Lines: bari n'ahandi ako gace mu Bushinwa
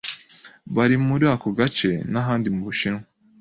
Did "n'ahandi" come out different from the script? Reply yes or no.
yes